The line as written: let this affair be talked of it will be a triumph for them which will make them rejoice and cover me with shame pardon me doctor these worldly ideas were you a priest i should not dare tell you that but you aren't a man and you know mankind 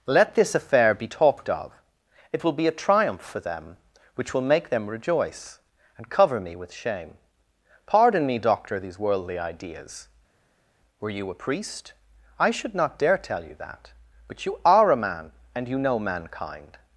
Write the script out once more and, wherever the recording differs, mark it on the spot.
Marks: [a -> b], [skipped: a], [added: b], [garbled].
let this affair be talked of it will be a triumph for them which will make them rejoice and cover me with shame pardon me doctor these worldly ideas were you a priest i should not dare tell you that but you [aren't -> are] a man and you know mankind